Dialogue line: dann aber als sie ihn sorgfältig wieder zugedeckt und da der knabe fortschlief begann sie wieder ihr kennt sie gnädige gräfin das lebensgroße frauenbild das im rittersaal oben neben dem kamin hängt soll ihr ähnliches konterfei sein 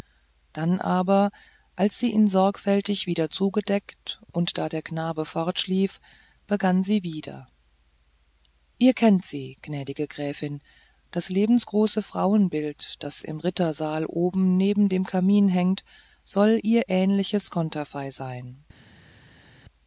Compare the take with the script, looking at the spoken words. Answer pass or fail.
pass